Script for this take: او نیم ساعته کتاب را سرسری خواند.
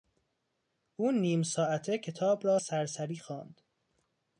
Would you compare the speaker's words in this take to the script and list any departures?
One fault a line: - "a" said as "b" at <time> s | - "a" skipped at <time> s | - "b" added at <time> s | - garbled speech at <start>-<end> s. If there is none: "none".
none